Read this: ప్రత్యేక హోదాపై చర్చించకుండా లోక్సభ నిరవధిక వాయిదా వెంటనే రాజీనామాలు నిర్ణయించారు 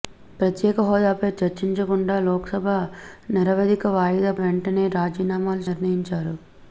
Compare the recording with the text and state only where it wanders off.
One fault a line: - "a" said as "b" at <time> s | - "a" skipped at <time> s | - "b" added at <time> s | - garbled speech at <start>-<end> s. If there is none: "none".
none